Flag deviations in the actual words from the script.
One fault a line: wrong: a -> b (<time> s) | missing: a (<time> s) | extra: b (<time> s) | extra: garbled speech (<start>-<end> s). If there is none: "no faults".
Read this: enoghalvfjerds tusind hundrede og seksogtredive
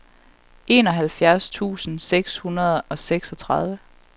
extra: seks (2.0 s)